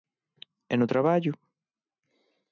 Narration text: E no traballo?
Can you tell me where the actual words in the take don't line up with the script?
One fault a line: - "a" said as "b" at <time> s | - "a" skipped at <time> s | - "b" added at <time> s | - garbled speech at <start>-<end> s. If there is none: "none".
none